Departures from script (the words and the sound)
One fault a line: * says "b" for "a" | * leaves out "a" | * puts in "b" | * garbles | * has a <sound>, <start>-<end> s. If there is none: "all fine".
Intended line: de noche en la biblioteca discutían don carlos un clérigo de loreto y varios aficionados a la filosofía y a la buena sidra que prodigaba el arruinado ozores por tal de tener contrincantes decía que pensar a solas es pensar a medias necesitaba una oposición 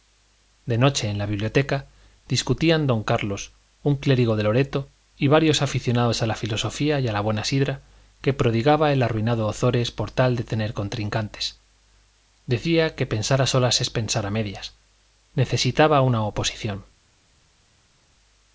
all fine